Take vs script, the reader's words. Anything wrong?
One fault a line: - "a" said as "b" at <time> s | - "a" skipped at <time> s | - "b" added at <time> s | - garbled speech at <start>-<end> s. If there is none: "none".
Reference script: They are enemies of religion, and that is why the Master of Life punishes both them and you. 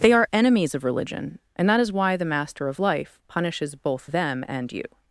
none